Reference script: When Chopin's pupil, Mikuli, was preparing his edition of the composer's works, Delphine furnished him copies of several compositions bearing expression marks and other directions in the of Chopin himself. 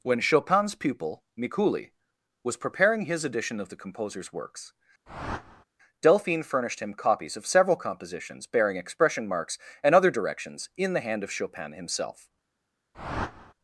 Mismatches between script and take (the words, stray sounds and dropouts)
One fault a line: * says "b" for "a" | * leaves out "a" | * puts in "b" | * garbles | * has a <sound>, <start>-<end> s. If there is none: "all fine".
* has a whoosh, 5.1-5.6 s
* puts in "hand"
* has a whoosh, 12.9-13.5 s